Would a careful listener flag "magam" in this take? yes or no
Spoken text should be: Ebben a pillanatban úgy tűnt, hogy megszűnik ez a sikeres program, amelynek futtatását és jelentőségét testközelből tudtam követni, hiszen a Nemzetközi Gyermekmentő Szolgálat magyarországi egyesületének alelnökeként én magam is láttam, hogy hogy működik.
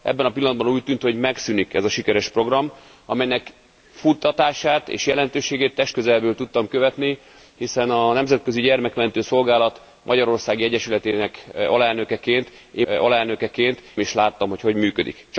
yes